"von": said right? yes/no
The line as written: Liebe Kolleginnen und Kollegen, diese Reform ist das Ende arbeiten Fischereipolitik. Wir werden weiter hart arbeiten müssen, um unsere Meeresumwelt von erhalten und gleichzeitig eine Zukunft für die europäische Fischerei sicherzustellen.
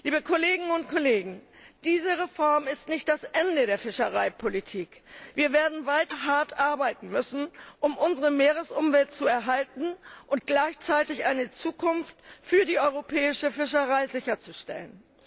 no